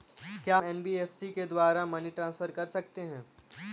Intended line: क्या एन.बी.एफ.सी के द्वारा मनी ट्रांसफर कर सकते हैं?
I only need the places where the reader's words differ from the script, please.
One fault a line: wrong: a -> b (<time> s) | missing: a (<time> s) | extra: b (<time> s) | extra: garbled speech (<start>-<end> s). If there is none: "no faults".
no faults